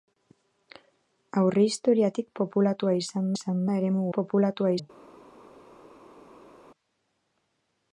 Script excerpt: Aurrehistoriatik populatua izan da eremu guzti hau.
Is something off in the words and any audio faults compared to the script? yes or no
yes